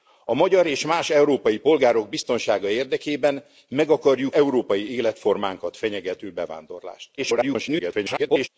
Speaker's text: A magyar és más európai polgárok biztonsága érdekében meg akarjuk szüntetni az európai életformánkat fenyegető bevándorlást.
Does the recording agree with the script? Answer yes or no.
no